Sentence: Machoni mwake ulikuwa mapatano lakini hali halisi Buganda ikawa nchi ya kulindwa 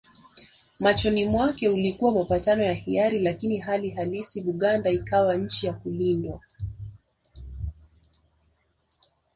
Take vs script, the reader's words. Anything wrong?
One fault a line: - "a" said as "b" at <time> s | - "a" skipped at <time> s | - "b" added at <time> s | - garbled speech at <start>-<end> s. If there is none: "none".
- "ya hiari" added at 2.6 s